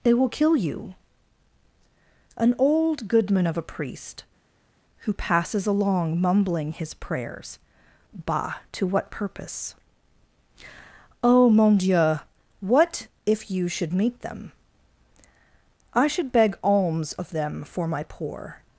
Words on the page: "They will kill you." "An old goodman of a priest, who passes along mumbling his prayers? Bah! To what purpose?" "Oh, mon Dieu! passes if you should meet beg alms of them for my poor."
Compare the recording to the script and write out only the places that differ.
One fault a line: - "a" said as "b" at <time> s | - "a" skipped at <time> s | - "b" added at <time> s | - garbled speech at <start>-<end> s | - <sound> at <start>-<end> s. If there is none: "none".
- "passes" said as "what" at 12.6 s
- "them I should" added at 14.2 s